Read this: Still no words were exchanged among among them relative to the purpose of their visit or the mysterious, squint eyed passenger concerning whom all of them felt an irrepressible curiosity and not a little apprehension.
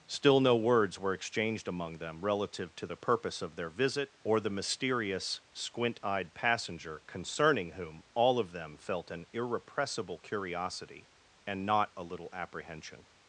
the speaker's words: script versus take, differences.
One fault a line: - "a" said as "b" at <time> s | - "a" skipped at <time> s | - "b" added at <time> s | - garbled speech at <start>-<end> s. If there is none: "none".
- "among" skipped at 2.0 s